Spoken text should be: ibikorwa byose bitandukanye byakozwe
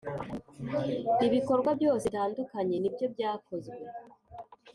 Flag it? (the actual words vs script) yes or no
yes